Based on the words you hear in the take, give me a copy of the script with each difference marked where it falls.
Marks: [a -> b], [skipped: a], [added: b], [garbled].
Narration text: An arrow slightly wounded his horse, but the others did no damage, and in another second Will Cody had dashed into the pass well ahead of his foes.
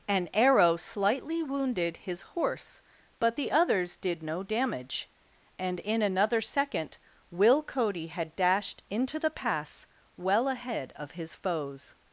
An arrow slightly wounded his horse, but the others did no damage, and in another second Will Cody had dashed into the pass well ahead of his foes.